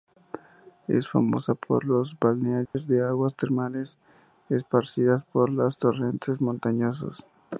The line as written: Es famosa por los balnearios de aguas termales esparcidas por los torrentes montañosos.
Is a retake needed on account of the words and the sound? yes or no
yes